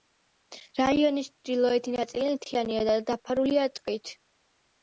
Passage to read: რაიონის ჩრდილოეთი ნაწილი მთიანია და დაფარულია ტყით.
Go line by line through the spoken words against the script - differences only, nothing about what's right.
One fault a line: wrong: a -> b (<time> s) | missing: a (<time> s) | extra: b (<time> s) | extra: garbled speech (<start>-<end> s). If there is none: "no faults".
no faults